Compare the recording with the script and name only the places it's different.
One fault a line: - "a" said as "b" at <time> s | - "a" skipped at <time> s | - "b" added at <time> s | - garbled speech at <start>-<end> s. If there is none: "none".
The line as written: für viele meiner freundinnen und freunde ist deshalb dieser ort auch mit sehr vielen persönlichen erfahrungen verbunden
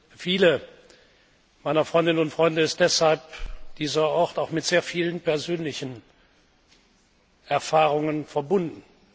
none